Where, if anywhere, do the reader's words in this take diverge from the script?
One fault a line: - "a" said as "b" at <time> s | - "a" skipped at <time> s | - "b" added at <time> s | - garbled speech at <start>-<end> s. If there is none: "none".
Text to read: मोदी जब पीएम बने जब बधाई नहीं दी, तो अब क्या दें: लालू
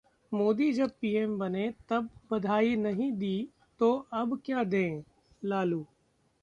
- "जब" said as "तब" at 1.9 s